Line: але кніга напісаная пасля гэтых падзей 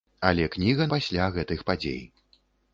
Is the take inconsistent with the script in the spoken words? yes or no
yes